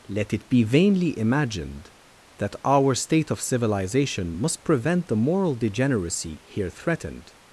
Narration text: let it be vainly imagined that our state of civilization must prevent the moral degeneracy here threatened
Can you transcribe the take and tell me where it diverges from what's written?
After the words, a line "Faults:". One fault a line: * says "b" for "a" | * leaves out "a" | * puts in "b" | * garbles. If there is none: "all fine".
let it be vainly imagined that our state of civilization must prevent the moral degeneracy here threatened
Faults:
all fine